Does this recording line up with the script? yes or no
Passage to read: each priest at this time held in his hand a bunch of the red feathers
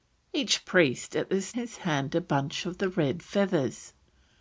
no